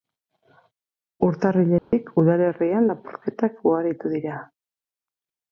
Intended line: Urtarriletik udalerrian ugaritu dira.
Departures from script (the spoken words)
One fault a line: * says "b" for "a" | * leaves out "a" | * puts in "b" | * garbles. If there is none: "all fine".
* puts in "lapurretak"